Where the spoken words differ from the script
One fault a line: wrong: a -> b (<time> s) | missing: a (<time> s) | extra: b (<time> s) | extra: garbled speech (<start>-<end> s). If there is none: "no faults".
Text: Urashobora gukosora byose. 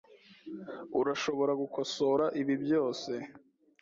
extra: ibi (2.4 s)